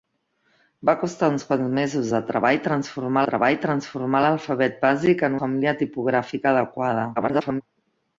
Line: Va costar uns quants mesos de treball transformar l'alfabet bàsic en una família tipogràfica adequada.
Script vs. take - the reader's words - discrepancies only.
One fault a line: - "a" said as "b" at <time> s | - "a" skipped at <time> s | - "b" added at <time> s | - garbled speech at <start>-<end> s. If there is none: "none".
- "treball transformar" added at 3.3 s
- "una" skipped at 5.4 s
- garbled speech at 7.2-7.6 s